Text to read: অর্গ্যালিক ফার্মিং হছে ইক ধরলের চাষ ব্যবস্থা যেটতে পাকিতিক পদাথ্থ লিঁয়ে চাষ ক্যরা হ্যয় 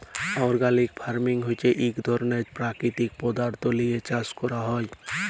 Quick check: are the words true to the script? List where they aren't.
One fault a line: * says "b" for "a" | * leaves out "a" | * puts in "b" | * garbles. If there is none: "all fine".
* leaves out "চাষ ব্যবস্থা যেটতে"